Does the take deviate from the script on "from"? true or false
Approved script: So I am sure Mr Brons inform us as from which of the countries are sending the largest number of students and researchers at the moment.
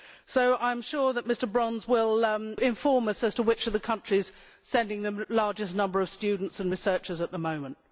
true